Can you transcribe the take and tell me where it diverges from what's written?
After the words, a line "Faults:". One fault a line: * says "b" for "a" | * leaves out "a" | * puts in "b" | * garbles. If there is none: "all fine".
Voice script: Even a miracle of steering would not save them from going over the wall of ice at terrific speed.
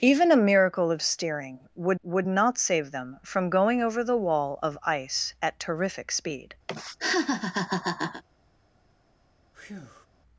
Even a miracle of steering would would not save them from going over the wall of ice at terrific speed.
Faults:
* puts in "would"